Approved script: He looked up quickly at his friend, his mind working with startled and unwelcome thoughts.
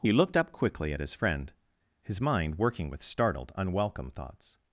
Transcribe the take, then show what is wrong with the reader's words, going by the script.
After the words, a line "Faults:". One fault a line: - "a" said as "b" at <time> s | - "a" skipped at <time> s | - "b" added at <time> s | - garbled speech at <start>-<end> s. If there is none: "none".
He looked up quickly at his friend, his mind working with startled unwelcome thoughts.
Faults:
- "and" skipped at 3.5 s